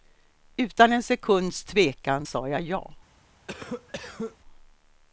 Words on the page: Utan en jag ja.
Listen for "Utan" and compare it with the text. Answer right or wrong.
right